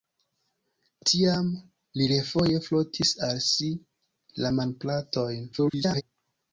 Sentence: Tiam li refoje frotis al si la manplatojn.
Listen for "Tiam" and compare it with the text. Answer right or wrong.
right